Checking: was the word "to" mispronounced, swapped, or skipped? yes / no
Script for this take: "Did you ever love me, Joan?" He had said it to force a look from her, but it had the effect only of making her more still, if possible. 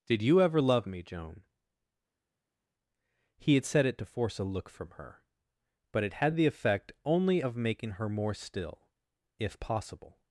no